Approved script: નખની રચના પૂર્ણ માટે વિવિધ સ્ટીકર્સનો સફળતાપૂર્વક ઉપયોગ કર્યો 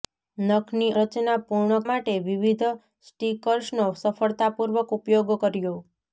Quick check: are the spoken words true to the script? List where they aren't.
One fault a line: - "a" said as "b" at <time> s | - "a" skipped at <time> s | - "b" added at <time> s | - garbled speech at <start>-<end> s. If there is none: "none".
none